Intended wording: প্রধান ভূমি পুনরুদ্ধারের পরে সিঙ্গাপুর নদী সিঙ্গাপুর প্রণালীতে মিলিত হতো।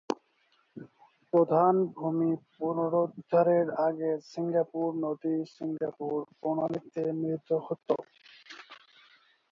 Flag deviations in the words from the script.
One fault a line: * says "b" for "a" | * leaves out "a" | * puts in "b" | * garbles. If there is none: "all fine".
* says "আগে" for "পরে"